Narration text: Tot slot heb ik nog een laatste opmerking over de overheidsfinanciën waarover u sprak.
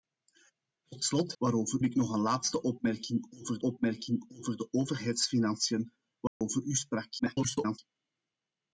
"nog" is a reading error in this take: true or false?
false